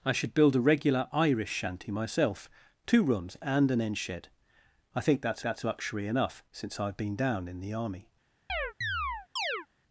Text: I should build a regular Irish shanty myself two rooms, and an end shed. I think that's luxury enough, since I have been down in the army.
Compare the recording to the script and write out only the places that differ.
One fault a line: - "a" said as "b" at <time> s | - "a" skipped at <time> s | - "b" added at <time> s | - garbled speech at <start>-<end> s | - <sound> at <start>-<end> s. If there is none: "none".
- "that's" added at 5.4 s
- chirp at 8.5-9.7 s